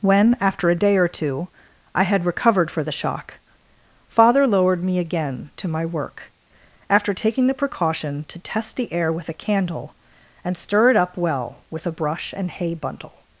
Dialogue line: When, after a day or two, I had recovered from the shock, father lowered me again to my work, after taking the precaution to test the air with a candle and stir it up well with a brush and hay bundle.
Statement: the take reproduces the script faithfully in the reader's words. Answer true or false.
false